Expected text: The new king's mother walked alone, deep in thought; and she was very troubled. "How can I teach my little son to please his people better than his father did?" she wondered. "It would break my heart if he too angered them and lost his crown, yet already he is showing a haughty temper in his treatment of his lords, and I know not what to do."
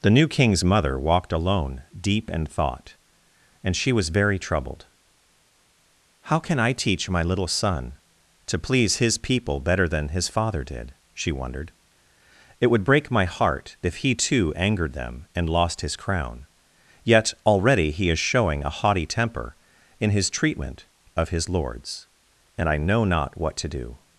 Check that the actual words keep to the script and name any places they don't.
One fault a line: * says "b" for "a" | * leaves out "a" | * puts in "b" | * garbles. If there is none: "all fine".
all fine